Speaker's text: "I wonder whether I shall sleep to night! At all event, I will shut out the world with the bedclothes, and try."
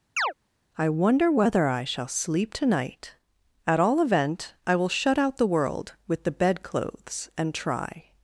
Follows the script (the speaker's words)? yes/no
yes